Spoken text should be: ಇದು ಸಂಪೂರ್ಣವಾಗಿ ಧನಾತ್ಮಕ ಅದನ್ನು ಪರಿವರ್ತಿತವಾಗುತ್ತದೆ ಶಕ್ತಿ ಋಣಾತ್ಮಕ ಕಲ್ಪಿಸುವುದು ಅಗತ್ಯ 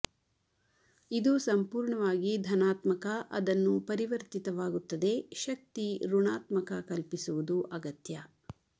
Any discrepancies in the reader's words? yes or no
no